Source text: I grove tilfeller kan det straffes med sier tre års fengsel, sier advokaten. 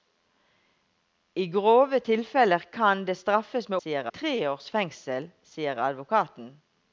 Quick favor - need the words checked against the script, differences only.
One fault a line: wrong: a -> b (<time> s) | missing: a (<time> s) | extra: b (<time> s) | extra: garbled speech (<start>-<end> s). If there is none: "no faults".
no faults